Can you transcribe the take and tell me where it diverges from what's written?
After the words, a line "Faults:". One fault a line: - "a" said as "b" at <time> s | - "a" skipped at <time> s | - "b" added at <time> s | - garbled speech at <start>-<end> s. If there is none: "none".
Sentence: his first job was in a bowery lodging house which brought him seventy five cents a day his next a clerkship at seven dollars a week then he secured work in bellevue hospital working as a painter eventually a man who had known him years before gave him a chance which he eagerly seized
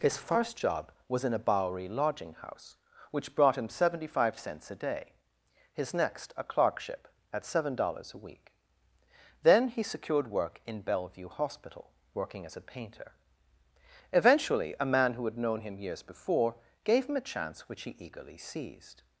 his first job was in a bowery lodging house which brought him seventy five cents a day his next a clerkship at seven dollars a week then he secured work in bellevue hospital working as a painter eventually a man who had known him years before gave him a chance which he eagerly seized
Faults:
none